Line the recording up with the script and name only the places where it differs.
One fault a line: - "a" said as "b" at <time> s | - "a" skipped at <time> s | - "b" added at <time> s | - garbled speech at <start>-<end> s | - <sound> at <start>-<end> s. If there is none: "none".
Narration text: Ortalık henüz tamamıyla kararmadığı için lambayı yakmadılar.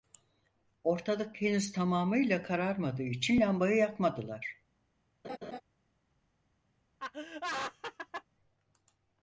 - laugh at 5.2-5.6 s
- laugh at 7.0-8.2 s